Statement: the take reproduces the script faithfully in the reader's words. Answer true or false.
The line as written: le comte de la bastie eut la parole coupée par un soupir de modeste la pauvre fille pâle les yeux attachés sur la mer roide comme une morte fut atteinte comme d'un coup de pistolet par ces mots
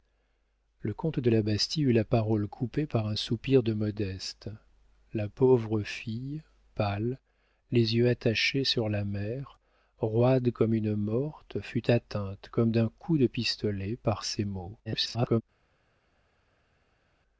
false